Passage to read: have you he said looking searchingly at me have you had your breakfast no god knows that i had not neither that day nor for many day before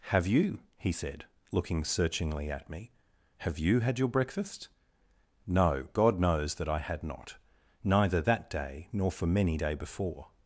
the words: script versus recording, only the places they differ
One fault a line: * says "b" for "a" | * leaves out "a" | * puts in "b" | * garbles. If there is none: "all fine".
all fine